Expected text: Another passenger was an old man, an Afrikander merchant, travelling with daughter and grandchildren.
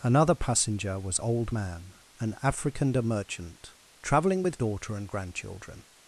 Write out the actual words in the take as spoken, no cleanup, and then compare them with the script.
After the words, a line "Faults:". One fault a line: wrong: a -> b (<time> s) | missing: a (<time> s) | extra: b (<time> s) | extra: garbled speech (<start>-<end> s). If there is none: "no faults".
Another passenger was old man, an Afrikander merchant, travelling with daughter and grandchildren.
Faults:
missing: an (1.2 s)